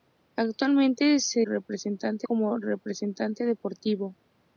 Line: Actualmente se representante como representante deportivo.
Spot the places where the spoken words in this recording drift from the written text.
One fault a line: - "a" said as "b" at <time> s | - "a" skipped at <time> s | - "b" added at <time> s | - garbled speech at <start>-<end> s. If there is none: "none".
none